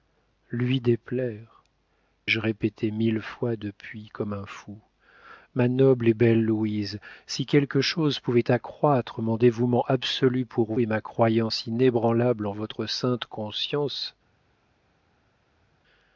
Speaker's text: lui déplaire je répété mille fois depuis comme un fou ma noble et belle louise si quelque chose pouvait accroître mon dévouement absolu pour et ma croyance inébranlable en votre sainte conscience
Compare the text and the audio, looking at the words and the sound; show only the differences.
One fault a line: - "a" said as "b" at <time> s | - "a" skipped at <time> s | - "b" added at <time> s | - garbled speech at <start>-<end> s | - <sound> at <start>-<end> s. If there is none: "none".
none